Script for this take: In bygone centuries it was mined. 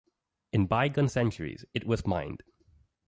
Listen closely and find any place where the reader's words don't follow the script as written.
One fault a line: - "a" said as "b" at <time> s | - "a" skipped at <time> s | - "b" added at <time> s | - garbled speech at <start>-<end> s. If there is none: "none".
none